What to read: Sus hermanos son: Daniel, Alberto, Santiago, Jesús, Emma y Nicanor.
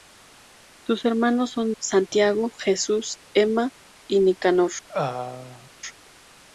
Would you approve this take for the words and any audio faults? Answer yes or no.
no